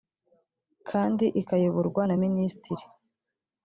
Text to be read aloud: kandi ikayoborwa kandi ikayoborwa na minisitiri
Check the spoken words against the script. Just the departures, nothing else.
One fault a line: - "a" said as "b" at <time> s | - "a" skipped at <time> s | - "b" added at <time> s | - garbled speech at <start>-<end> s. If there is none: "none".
- "kandi ikayoborwa" skipped at 2.0 s